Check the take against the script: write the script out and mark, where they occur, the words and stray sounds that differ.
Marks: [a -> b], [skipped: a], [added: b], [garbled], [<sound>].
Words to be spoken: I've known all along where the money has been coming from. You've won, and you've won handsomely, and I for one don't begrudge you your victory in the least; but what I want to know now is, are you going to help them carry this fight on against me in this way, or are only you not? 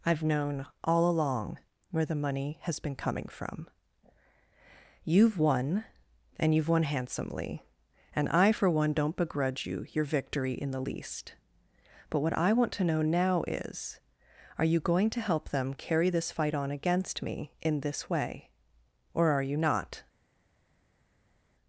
I've known all along where the money has been coming from. You've won, and you've won handsomely, and I for one don't begrudge you your victory in the least; but what I want to know now is, are you going to help them carry this fight on against me in this way, or are [skipped: only] you not?